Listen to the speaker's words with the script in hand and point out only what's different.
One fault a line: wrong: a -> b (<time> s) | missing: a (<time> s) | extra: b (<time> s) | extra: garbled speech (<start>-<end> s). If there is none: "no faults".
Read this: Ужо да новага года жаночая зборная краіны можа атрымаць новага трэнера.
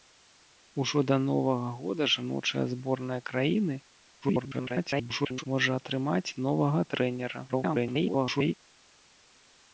extra: garbled speech (4.2-5.4 s)
extra: garbled speech (7.5-8.5 s)